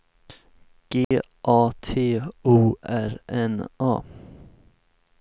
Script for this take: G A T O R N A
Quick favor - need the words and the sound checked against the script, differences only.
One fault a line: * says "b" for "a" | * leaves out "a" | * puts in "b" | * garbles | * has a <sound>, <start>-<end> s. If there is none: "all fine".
* has a dropout, 1.0-1.1 s